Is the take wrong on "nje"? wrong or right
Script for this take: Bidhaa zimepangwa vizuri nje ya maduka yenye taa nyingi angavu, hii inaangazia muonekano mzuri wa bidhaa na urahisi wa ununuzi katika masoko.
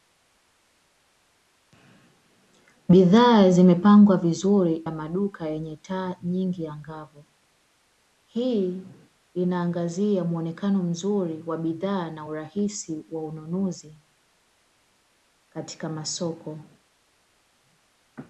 wrong